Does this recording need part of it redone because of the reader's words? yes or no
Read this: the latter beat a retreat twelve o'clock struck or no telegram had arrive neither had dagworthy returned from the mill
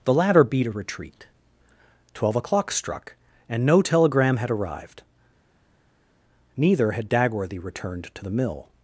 yes